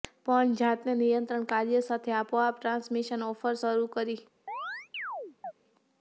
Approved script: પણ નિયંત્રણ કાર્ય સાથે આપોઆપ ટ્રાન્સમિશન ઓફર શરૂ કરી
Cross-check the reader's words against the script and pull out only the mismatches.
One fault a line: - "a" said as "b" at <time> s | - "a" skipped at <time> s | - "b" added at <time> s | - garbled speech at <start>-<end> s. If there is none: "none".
- "જાતે" added at 0.6 s